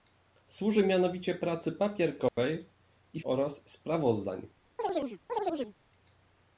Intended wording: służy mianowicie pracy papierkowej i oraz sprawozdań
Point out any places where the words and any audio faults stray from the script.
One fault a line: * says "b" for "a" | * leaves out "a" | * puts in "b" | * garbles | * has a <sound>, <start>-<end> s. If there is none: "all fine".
* has a dropout, 2.3-2.4 s
* has a chirp, 4.8-5.8 s